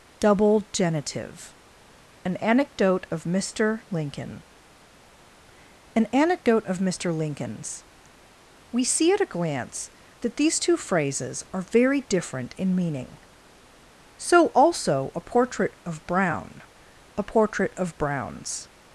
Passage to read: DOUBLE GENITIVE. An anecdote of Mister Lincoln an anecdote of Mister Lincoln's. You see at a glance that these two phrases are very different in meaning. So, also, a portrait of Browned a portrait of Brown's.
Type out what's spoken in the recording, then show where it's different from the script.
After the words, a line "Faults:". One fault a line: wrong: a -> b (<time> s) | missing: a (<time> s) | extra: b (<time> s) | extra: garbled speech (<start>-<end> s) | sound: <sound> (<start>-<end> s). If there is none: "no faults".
DOUBLE GENITIVE. An anecdote of Mister Lincoln an anecdote of Mister Lincoln's. We see at a glance that these two phrases are very different in meaning. So, also, a portrait of Brown a portrait of Brown's.
Faults:
wrong: You -> We (8.7 s)
wrong: Browned -> Brown (16.1 s)